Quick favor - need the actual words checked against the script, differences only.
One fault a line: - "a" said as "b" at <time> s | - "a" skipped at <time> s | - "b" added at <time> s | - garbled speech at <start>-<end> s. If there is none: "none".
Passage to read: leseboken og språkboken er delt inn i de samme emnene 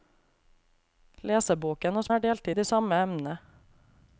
- "språkboken" skipped at 2.1 s
- "inn" skipped at 2.5 s